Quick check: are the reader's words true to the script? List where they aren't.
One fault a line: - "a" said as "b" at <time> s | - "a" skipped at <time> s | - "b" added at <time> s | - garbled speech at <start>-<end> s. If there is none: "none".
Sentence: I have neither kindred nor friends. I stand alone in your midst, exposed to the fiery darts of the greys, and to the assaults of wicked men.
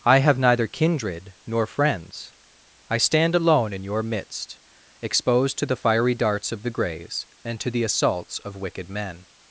none